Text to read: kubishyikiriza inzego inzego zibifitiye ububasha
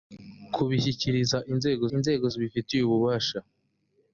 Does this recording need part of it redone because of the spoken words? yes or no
no